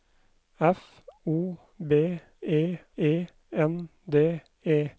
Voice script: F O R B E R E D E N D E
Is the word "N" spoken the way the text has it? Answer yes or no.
yes